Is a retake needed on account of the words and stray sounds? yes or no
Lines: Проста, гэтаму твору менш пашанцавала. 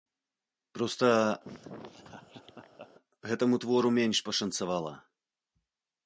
yes